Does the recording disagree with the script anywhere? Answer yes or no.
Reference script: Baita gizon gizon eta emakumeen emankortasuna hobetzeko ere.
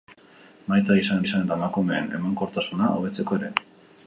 no